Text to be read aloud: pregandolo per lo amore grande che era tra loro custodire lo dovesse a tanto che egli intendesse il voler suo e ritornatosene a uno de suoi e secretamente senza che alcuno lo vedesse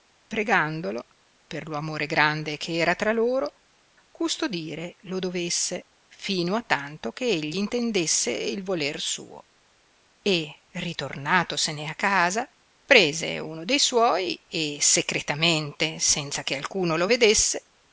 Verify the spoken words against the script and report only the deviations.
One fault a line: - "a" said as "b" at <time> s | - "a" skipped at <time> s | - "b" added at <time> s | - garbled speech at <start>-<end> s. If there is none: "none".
- "fino" added at 6.1 s
- "casa prese" added at 12.0 s